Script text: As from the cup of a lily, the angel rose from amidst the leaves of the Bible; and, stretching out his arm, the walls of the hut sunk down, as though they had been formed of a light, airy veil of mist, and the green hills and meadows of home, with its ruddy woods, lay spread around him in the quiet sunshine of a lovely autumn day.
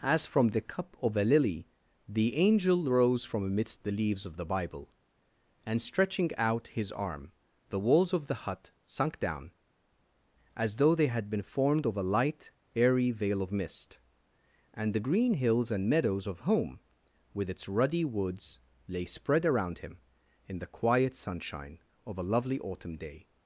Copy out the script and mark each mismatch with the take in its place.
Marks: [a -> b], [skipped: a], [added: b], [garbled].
As from the cup of a lily, the angel rose from amidst the leaves of the Bible; and, stretching out his arm, the walls of the hut sunk down, as though they had been formed of a light, airy veil of mist, and the green hills and meadows of home, with its ruddy woods, lay spread around him in the quiet sunshine of a lovely autumn day.